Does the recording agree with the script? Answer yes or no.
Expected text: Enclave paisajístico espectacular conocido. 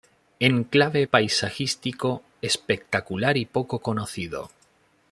no